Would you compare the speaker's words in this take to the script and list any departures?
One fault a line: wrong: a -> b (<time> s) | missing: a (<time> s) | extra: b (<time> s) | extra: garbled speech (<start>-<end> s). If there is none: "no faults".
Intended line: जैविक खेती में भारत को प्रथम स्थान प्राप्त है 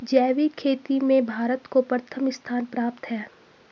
no faults